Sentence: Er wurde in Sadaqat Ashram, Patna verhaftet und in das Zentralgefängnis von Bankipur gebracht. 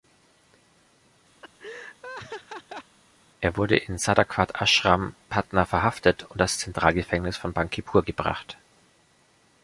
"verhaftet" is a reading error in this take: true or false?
false